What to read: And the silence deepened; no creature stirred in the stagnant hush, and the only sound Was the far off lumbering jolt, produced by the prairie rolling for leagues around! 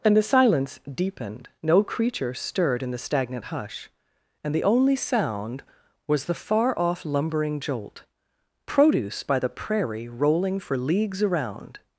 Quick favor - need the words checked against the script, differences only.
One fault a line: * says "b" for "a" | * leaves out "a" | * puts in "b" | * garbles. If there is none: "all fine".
* says "produce" for "produced"